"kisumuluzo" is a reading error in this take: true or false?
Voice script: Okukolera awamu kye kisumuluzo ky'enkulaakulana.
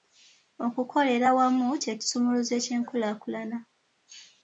false